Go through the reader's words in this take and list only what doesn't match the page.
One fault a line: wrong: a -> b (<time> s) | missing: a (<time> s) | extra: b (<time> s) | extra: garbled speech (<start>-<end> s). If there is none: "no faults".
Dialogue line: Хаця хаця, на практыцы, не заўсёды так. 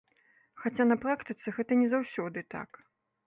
missing: хаця (0.9 s)
extra: гэта (1.6 s)